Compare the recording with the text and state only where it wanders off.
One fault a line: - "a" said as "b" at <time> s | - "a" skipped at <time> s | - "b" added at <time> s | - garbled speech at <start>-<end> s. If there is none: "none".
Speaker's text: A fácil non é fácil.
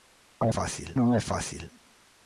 none